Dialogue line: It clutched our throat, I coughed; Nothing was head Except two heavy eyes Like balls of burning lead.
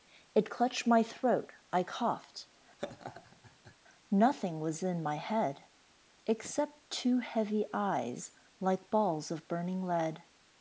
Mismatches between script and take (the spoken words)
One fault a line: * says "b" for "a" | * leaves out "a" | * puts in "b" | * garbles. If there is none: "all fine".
* says "my" for "our"
* puts in "in my"